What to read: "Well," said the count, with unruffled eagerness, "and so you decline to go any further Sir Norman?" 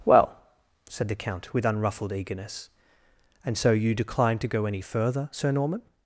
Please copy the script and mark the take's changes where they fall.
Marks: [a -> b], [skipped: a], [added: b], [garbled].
"Well," said the count, with unruffled eagerness, "and so you decline to go any further Sir Norman?"